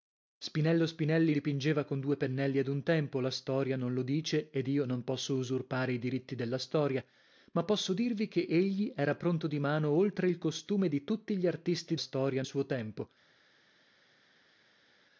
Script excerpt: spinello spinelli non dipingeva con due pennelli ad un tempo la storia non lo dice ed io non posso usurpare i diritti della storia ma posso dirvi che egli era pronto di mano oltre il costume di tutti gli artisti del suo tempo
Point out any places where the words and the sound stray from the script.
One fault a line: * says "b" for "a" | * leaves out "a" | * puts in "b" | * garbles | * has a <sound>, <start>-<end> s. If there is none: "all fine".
* leaves out "non"
* says "storia" for "del"